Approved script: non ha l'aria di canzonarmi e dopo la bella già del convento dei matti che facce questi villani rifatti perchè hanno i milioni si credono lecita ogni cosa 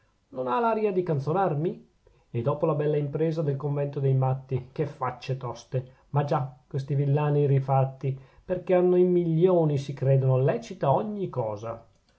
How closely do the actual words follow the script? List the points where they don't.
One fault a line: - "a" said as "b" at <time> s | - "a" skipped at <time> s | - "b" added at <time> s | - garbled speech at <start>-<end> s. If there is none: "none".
- "già" said as "impresa" at 3.0 s
- "toste ma già" added at 5.4 s